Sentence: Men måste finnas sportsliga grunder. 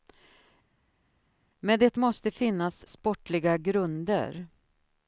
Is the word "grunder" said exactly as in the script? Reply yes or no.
yes